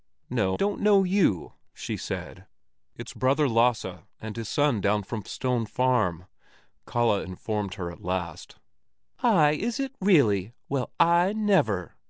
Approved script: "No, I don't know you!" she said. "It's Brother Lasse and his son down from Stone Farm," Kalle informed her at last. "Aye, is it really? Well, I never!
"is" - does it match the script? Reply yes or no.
yes